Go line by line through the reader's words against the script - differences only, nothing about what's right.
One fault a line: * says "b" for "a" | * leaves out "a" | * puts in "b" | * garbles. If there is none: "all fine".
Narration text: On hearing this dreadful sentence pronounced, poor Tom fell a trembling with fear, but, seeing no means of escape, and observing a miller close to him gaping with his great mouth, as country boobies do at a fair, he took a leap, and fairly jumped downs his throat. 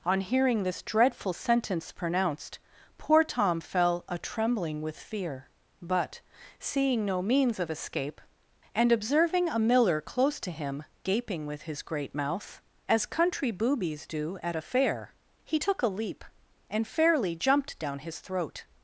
* says "down" for "downs"